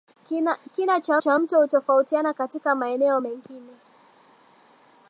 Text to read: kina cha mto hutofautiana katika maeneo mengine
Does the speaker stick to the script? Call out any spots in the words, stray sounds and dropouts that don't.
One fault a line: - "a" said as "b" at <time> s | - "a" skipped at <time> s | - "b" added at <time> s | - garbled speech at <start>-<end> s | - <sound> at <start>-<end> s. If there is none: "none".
- "cha" added at 1.2 s